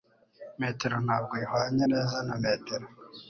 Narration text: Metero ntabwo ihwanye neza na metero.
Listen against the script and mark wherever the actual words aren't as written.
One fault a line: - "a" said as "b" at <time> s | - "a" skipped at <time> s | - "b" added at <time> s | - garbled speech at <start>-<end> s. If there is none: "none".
none